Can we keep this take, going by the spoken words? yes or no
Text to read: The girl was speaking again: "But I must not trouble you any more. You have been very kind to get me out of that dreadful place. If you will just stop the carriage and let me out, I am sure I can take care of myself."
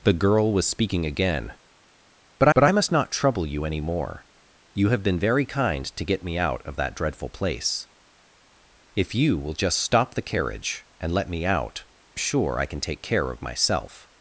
no